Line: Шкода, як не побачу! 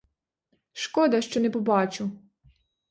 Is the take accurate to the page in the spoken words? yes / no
no